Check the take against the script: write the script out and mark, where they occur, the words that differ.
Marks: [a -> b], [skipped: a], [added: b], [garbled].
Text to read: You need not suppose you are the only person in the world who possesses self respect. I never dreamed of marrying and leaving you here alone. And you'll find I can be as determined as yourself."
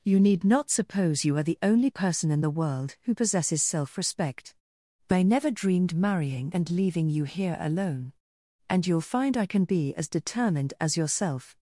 You need not suppose you are the only person in the world who possesses self respect. I never dreamed [skipped: of] marrying and leaving you here alone. And you'll find I can be as determined as yourself."